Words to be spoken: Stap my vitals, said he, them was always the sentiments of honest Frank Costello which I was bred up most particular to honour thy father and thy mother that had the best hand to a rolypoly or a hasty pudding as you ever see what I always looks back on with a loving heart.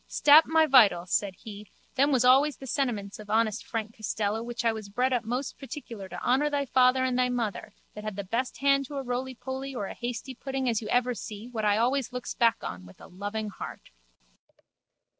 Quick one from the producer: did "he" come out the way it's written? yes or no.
yes